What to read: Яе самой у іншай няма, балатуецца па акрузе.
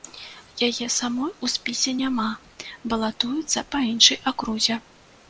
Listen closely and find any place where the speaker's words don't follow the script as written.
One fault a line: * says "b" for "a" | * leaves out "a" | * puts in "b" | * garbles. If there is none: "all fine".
* says "спісе" for "іншай"
* puts in "іншай"